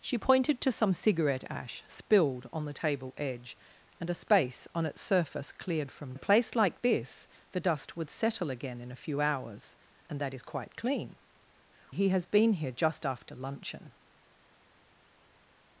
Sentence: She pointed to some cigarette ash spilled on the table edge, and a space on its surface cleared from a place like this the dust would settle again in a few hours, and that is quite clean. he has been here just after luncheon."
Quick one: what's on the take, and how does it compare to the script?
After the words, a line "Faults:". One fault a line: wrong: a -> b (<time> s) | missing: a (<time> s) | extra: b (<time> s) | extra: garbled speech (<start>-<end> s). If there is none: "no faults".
She pointed to some cigarette ash spilled on the table edge, and a space on its surface cleared from a place like this the dust would settle again in a few hours, and that is quite clean. he has been here just after luncheon."
Faults:
no faults